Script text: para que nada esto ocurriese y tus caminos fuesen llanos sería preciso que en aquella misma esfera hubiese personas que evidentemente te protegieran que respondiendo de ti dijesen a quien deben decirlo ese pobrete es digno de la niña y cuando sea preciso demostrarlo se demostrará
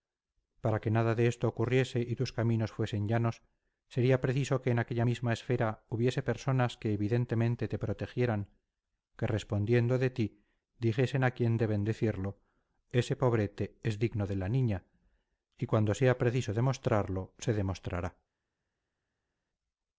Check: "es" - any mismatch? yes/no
no